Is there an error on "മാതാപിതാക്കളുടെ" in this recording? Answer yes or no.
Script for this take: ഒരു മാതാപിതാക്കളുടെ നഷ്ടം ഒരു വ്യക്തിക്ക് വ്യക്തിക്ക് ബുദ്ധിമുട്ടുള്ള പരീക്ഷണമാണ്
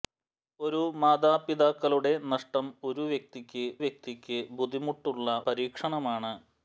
no